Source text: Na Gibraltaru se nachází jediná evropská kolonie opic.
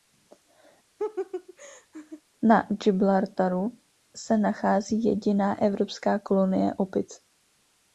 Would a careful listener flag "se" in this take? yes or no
no